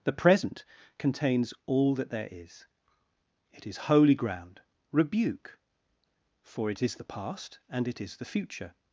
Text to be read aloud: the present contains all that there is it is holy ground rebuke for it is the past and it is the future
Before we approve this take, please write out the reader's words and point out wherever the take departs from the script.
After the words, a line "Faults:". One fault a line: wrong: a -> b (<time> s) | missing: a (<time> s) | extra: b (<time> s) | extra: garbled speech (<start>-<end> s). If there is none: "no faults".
the present contains all that there is it is holy ground rebuke for it is the past and it is the future
Faults:
no faults